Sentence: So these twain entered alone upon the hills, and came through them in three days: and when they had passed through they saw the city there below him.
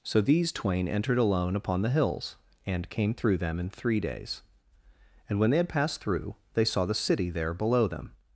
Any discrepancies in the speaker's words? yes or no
yes